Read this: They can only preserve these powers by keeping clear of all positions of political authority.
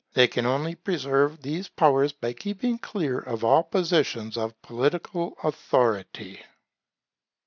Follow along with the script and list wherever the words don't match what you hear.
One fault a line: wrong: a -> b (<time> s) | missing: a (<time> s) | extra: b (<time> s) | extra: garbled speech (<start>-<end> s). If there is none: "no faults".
no faults